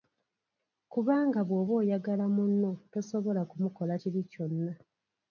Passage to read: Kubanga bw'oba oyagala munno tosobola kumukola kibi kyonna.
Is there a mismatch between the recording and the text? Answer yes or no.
no